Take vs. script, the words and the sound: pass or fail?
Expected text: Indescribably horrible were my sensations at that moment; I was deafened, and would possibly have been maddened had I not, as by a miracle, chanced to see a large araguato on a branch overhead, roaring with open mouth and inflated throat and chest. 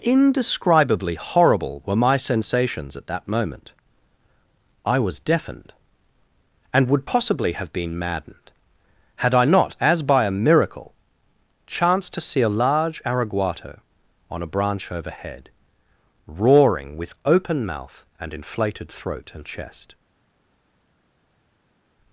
pass